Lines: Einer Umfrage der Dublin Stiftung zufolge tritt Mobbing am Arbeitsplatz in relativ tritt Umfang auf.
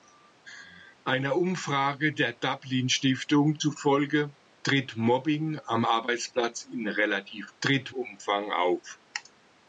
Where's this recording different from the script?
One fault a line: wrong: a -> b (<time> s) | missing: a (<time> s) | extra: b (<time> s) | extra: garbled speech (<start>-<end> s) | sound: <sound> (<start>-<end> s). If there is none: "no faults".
no faults